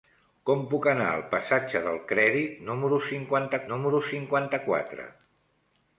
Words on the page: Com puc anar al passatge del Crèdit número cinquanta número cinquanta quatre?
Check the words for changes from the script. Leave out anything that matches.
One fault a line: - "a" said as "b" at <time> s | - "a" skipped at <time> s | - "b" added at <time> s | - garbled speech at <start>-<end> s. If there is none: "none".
none